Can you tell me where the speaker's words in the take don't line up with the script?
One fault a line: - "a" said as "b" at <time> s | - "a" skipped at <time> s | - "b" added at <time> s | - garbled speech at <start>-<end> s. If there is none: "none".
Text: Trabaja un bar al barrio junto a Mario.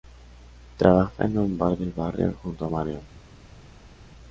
- "en" added at 1.2 s
- "al" said as "del" at 1.8 s